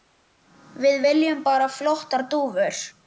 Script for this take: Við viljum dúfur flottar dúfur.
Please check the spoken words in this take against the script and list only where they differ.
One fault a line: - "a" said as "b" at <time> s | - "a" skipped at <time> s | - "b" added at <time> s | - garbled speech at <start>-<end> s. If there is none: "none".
- "dúfur" said as "bara" at 1.5 s